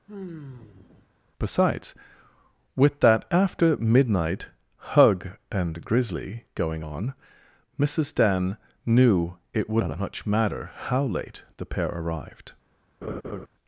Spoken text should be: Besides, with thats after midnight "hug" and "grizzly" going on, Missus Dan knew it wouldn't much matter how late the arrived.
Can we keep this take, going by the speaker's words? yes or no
no